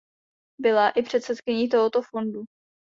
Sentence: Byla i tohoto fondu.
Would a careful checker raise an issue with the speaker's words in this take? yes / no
yes